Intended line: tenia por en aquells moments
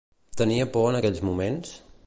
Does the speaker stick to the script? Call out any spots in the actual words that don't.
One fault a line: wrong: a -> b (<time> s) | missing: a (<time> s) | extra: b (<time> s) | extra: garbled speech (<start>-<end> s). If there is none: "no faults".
no faults